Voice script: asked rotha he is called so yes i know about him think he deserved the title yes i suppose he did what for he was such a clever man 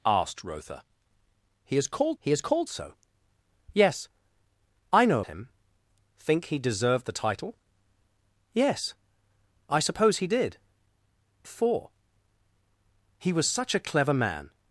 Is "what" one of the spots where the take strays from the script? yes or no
yes